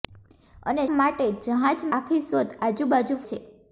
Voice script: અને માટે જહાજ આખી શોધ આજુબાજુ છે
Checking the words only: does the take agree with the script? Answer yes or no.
yes